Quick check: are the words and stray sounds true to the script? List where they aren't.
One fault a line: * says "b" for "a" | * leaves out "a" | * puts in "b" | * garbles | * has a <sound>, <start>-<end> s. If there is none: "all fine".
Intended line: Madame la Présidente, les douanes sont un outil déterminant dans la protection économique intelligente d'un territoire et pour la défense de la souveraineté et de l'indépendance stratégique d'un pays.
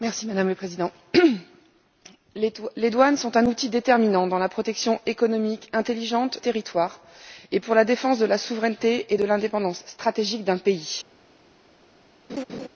* leaves out "d'un"
* has a laugh, 12.3-12.7 s